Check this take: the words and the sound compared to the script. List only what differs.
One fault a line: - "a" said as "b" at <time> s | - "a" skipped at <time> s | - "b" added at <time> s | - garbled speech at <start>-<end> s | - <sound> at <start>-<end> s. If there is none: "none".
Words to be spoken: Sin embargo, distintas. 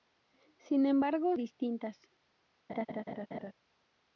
- laugh at 2.7-3.5 s